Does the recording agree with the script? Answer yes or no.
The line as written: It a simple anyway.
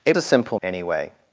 yes